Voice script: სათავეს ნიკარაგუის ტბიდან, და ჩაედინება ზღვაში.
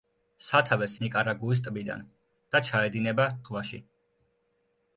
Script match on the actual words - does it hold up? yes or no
yes